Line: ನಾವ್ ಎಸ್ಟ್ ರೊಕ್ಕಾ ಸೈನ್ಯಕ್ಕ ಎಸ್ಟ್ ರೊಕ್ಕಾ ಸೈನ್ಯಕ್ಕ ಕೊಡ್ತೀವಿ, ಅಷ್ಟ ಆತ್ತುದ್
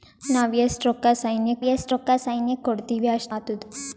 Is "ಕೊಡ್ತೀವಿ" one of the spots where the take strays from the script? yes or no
no